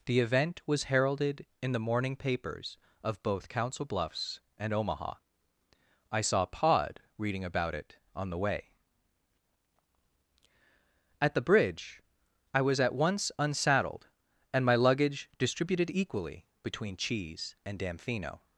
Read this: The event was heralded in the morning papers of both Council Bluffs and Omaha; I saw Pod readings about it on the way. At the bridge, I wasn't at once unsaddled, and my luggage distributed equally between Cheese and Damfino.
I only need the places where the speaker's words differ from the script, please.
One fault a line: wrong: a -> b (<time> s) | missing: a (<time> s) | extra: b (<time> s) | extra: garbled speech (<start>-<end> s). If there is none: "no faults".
wrong: readings -> reading (7.2 s)
wrong: wasn't -> was (12.6 s)